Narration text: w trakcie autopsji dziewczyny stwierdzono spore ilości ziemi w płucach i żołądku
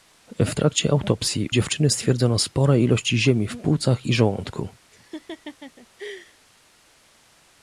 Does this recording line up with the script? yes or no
yes